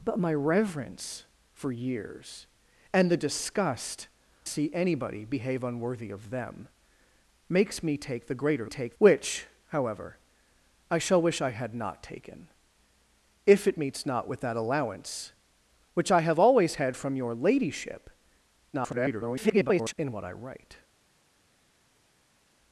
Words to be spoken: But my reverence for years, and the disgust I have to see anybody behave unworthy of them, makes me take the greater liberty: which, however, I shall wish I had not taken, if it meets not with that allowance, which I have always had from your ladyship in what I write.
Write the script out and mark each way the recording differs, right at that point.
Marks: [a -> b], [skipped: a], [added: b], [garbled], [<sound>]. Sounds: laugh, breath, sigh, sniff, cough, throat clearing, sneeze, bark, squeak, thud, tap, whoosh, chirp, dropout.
But my reverence for years, and the disgust [skipped: I have to] see anybody behave unworthy of them, makes me take the greater [liberty: -> take] which, however, I shall wish I had not taken, if it meets not with that allowance, which I have always had from your ladyship [garbled] in what I write.